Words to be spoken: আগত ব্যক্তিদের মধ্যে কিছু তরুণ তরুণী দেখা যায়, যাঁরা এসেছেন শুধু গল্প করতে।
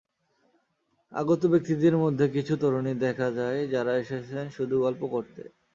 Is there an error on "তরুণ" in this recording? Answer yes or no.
yes